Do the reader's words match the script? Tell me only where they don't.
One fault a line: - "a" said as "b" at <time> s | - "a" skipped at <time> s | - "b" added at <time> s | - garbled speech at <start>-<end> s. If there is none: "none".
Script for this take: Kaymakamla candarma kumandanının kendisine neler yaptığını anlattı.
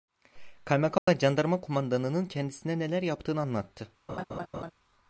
none